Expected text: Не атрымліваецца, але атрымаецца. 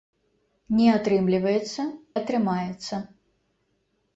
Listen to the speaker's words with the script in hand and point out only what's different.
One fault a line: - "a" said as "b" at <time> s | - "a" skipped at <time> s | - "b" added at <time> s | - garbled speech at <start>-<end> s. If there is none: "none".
- "але" skipped at 1.8 s